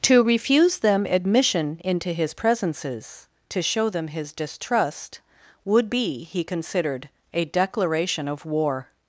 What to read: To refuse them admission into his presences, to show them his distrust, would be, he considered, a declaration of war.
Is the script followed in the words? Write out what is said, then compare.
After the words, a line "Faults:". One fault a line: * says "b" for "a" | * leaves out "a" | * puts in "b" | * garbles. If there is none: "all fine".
To refuse them admission into his presences, to show them his distrust, would be, he considered, a declaration of war.
Faults:
all fine